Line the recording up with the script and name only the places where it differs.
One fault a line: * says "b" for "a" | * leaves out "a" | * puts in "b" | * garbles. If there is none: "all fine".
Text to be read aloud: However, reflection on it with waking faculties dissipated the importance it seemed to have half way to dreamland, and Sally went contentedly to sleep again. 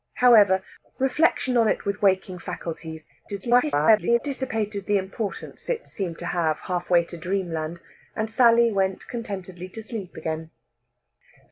* garbles